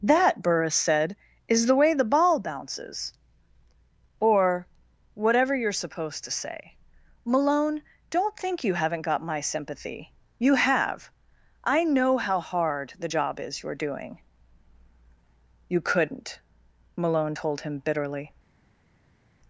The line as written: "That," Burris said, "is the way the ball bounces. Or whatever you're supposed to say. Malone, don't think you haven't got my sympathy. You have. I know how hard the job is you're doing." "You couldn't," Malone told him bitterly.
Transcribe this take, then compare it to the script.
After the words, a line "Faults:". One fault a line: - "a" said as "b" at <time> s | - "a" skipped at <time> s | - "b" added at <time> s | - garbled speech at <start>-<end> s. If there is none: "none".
"That," Burris said, "is the way the ball bounces. Or whatever you're supposed to say. Malone, don't think you haven't got my sympathy. You have. I know how hard the job is you're doing." "You couldn't," Malone told him bitterly.
Faults:
none